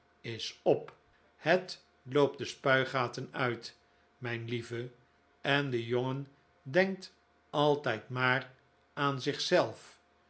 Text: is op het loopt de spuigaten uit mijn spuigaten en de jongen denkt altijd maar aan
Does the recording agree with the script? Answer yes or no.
no